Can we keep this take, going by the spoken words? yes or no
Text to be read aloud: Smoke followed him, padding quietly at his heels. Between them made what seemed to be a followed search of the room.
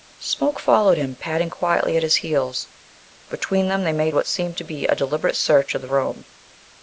no